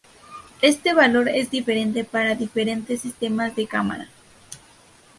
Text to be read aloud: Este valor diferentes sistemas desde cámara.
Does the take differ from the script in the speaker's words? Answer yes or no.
yes